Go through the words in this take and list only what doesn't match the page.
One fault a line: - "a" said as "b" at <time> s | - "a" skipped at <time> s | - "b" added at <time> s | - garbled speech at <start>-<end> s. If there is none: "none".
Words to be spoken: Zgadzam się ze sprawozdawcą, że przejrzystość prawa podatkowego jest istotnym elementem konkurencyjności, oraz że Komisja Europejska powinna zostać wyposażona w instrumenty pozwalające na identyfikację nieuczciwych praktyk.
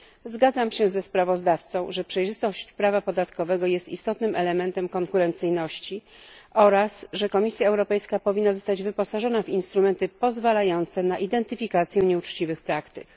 none